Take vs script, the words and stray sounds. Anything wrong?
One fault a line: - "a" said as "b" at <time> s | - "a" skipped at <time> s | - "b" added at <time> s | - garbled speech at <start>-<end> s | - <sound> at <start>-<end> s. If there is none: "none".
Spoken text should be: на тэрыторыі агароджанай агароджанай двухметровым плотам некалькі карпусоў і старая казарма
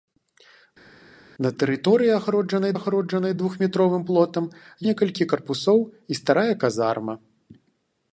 none